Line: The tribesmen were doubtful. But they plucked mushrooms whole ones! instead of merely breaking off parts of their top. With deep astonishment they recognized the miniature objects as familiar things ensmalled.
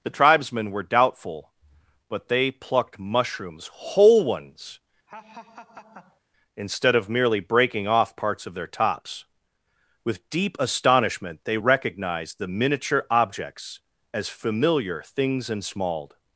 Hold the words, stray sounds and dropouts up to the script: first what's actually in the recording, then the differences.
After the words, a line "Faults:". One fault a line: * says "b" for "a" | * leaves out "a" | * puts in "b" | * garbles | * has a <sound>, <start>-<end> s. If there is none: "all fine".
The tribesmen were doubtful. But they plucked mushrooms whole ones! instead of merely breaking off parts of their tops. With deep astonishment they recognized the miniature objects as familiar things ensmalled.
Faults:
* has a laugh, 5.1-6.2 s
* says "tops" for "top"